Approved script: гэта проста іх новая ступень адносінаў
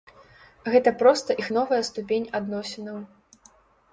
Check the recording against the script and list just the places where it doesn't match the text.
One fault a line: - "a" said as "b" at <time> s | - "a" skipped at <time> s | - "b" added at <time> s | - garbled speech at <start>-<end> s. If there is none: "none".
none